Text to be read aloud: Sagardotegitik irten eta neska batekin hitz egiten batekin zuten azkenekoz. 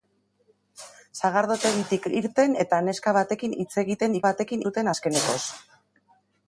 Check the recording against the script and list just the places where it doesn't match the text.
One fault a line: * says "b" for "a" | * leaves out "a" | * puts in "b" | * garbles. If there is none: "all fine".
all fine